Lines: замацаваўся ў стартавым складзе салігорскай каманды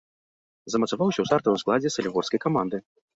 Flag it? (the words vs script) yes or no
no